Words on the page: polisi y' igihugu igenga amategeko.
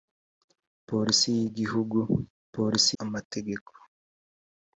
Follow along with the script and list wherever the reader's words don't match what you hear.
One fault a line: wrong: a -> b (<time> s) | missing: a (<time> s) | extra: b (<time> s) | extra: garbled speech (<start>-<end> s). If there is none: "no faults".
wrong: igenga -> polisi (2.5 s)